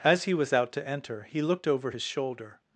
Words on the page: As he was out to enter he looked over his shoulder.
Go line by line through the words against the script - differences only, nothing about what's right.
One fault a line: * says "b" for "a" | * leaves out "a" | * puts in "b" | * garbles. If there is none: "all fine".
all fine